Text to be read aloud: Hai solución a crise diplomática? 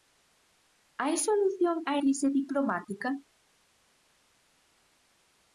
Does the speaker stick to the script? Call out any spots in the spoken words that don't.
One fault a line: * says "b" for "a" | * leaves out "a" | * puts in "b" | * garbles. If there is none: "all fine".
all fine